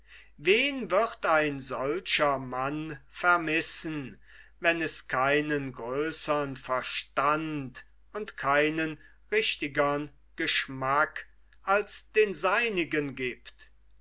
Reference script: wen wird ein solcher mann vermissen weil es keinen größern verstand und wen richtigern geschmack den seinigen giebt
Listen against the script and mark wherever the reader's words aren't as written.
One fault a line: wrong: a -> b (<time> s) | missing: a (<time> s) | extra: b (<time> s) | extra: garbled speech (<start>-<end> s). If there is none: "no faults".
wrong: weil -> wenn (4.6 s)
wrong: wen -> keinen (8.3 s)
extra: als (11.6 s)